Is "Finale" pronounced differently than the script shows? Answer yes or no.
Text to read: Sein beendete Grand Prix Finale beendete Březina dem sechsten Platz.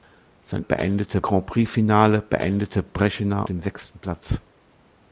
no